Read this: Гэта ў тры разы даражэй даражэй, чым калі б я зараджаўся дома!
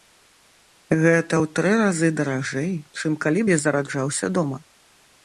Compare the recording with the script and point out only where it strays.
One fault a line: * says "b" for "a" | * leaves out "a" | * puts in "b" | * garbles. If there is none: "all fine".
* leaves out "даражэй"